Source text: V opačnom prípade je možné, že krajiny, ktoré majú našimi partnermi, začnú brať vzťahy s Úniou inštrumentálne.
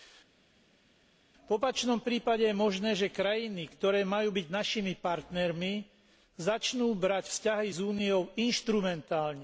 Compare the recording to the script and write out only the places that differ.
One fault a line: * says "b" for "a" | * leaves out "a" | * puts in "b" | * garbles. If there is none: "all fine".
* puts in "byť"